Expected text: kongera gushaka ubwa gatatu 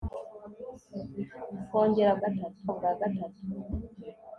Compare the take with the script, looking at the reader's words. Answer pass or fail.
fail